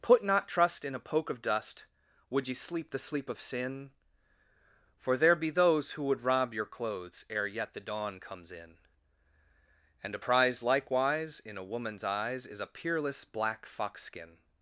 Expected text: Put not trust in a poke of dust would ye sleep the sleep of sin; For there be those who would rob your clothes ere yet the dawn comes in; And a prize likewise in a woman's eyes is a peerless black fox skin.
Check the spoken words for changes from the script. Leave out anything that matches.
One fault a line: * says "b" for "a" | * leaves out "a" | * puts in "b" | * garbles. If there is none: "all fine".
all fine